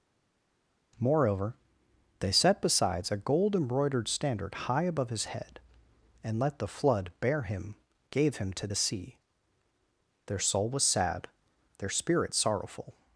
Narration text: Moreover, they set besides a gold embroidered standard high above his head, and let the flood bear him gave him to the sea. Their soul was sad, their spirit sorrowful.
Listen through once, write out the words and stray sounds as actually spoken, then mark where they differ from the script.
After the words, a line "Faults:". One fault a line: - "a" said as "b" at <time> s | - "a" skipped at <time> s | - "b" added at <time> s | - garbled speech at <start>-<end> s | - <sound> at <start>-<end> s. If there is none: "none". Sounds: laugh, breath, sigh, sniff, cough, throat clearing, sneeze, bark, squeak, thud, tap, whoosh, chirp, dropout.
Moreover, they set besides a gold embroidered standard high above his head, and let the flood bear him gave him to the sea. Their soul was sad, their spirit sorrowful.
Faults:
none